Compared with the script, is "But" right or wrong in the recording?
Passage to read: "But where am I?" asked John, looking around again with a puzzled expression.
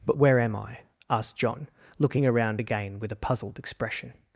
right